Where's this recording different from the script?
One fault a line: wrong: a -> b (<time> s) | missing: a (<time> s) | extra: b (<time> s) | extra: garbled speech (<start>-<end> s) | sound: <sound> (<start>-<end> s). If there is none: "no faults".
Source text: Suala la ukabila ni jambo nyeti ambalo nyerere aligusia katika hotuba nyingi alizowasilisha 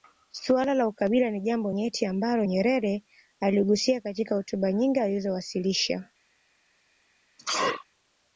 sound: sneeze (7.4-7.9 s)